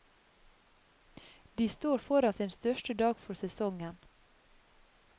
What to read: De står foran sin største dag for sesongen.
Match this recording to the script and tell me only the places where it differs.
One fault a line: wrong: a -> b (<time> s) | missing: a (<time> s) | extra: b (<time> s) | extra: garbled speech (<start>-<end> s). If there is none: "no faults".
no faults